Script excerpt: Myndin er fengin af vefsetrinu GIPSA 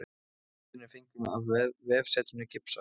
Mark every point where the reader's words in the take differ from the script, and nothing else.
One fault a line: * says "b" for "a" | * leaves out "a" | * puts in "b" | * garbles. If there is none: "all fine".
all fine